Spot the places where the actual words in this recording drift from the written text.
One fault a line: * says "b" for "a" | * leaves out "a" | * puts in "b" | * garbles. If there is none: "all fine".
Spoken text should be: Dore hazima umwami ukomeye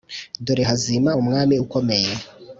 all fine